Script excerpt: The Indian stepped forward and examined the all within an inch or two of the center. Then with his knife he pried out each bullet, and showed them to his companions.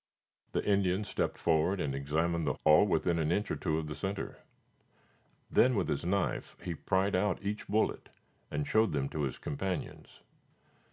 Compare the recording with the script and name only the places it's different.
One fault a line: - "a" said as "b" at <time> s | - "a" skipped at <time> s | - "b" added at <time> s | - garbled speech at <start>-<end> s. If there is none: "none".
none